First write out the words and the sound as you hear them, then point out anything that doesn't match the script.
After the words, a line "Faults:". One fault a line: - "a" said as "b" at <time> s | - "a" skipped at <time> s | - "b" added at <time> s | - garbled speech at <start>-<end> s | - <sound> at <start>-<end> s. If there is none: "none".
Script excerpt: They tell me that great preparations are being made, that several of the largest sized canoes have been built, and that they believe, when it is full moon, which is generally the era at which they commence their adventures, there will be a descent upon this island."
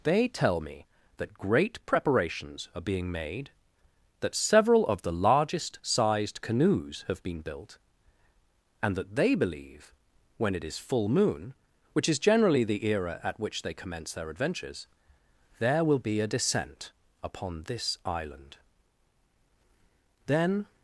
They tell me that great preparations are being made, that several of the largest sized canoes have been built, and that they believe, when it is full moon, which is generally the era at which they commence their adventures, there will be a descent upon this island." "Then
Faults:
- "Then" added at 20.3 s